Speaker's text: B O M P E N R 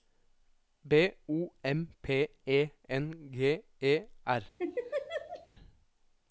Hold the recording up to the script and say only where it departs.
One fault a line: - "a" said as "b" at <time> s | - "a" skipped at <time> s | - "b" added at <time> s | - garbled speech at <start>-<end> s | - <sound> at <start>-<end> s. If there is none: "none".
- "G E" added at 3.3 s
- laugh at 4.6-5.5 s